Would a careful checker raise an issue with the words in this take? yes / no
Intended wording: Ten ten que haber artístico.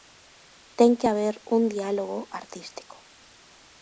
yes